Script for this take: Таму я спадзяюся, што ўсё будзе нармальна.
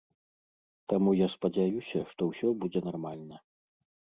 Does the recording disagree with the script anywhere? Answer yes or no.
no